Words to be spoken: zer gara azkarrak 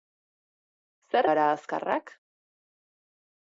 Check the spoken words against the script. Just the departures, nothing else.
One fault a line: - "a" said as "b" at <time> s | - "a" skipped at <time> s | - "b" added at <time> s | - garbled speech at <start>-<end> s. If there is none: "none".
none